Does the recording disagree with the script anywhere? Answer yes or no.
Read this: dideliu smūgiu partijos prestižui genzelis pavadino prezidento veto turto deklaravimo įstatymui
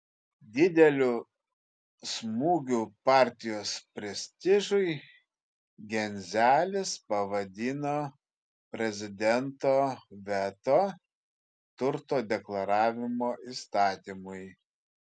no